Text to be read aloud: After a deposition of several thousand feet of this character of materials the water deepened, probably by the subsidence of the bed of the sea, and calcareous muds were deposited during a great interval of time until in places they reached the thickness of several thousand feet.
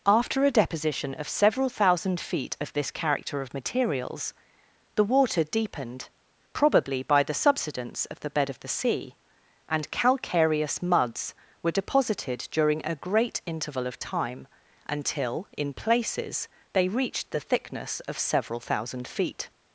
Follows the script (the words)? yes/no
yes